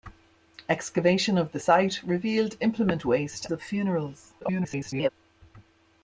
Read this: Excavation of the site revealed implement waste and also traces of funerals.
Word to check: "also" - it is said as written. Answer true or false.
false